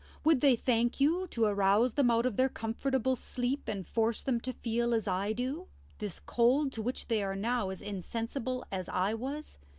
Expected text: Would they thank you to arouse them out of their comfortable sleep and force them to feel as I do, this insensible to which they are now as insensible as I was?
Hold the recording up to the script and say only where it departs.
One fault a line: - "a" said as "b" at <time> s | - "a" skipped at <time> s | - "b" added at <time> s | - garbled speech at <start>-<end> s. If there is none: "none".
- "insensible" said as "cold" at 6.2 s